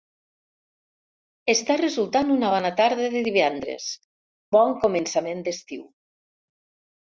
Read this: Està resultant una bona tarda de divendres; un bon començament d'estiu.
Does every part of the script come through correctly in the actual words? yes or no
no